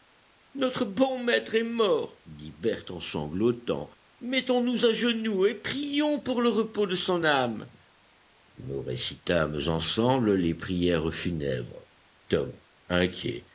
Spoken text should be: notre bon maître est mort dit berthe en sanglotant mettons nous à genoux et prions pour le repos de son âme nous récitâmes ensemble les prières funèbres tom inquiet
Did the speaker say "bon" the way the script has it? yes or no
yes